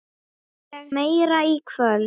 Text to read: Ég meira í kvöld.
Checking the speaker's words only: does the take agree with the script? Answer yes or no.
yes